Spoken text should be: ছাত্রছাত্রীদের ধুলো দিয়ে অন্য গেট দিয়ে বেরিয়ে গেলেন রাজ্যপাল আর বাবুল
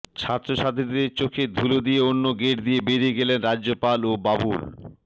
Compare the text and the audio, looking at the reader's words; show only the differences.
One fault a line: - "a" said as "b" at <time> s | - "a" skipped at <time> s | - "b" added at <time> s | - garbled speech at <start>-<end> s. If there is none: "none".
- "চোখে" added at 1.2 s
- "আর" said as "ও" at 4.0 s